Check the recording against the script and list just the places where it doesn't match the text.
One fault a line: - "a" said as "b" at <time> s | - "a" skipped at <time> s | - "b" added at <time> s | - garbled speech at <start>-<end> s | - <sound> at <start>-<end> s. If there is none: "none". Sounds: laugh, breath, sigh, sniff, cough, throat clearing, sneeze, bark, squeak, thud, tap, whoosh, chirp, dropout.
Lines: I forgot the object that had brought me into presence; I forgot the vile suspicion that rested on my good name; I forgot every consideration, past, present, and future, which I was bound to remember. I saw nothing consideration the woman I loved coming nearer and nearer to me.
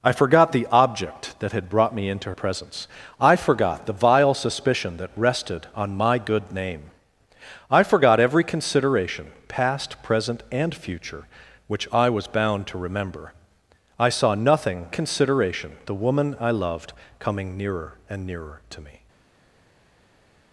none